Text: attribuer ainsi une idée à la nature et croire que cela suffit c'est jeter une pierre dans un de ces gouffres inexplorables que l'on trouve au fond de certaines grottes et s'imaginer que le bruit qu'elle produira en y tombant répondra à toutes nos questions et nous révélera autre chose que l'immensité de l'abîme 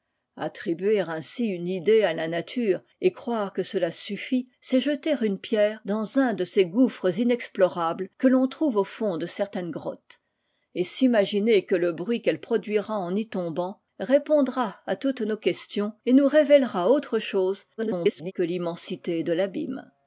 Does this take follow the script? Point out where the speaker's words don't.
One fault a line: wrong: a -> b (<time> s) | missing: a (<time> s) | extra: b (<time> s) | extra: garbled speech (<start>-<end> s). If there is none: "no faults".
extra: garbled speech (17.8-18.3 s)